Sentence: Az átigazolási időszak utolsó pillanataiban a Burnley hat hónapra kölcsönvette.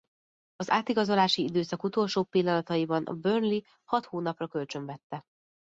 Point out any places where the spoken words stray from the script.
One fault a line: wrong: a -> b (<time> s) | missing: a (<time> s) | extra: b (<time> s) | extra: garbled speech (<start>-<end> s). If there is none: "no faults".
no faults